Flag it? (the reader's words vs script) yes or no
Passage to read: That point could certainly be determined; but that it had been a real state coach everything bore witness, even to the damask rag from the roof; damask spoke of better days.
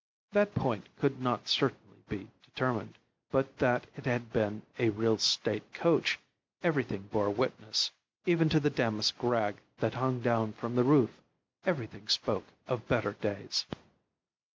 yes